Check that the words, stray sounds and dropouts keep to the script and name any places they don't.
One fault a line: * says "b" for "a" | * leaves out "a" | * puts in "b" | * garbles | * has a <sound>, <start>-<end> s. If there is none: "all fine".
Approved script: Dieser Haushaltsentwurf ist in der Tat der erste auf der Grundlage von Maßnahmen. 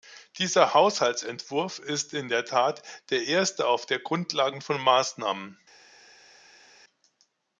all fine